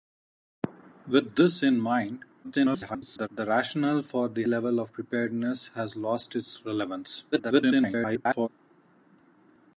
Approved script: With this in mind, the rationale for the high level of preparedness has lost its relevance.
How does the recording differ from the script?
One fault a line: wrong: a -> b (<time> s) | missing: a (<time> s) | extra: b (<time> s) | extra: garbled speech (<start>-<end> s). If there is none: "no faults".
extra: garbled speech (2.4-3.3 s)
missing: high (4.4 s)
extra: garbled speech (7.3-8.5 s)